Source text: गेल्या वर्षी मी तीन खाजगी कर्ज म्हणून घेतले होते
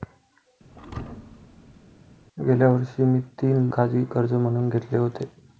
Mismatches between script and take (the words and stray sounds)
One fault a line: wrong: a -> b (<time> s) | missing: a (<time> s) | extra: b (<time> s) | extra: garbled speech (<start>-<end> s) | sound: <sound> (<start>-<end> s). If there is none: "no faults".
sound: thud (0.7-1.8 s)